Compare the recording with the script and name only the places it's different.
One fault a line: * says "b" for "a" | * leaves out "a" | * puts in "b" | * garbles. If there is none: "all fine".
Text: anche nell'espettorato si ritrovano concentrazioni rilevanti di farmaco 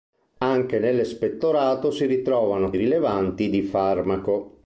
* leaves out "concentrazioni"